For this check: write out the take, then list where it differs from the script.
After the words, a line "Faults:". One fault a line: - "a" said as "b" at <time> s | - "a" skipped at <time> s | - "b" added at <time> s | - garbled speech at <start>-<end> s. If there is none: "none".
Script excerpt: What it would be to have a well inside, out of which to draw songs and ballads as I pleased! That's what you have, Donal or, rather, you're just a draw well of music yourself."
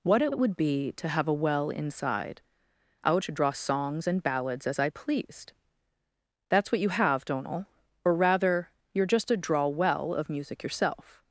What it it would be to have a well inside, out to draw songs and ballads as I pleased! That's what you have, Donal or, rather, you're just a draw well of music yourself."
Faults:
- "it" added at 0.3 s
- "of which" skipped at 3.2 s